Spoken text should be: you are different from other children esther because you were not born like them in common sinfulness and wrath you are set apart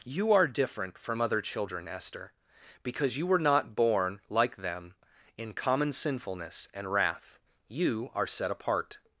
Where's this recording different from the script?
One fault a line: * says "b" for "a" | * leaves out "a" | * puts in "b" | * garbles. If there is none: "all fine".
all fine